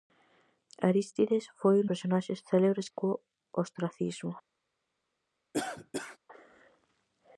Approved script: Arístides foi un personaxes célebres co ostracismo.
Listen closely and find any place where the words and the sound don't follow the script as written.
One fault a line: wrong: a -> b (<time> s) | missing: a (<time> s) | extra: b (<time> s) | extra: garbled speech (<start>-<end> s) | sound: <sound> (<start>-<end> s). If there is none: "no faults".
sound: cough (5.5-6.2 s)